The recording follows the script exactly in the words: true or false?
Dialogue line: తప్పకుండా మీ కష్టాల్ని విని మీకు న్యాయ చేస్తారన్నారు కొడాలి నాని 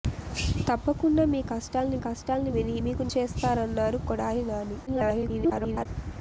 false